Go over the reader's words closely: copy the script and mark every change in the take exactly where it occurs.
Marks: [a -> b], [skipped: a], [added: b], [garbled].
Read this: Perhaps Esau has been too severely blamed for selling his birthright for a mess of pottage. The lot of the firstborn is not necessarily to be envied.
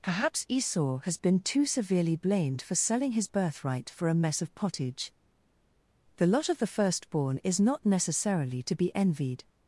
Perhaps Esau has been too severely blamed for selling his birthright for a mess of pottage. The lot of the firstborn is not necessarily to be envied.